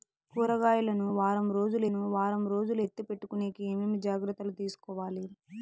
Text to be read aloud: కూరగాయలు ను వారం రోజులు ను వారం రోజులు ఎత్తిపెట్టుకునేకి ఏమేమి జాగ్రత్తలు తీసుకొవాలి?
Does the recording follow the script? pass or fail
pass